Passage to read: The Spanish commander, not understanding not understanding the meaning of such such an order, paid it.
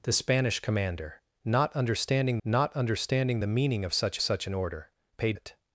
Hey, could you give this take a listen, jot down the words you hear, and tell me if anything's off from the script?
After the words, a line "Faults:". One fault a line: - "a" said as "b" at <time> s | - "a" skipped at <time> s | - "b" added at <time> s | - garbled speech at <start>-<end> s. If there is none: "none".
The Spanish commander, not understanding not understanding the meaning of such such an order, paid it.
Faults:
none